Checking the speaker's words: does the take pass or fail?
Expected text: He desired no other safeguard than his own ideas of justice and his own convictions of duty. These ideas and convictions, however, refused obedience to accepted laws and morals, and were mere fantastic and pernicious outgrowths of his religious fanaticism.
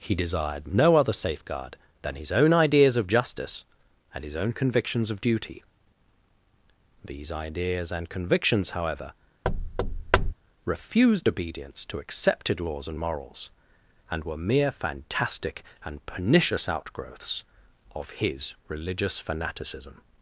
pass